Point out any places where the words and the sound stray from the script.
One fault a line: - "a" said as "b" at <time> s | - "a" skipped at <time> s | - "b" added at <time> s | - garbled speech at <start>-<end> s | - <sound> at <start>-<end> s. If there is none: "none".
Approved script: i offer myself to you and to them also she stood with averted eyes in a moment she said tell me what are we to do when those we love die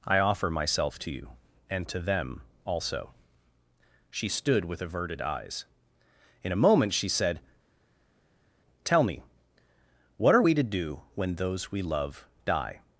none